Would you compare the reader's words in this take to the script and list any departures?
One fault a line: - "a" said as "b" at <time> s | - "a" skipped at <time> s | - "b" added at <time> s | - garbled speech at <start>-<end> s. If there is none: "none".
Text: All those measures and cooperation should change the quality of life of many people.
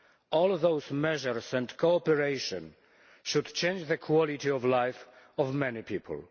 none